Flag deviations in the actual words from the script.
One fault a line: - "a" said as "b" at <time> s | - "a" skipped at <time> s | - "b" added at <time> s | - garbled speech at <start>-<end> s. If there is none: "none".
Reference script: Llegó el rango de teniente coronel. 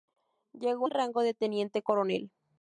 none